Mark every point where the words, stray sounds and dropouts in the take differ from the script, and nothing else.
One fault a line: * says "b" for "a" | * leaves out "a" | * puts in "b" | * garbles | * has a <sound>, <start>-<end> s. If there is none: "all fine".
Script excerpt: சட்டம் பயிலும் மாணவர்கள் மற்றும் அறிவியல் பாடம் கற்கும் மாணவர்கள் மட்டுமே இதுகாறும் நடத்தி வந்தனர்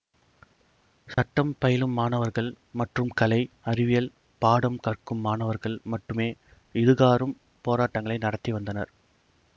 * has a dropout, 1.1-1.2 s
* puts in "கலை"
* puts in "போராட்டங்களை"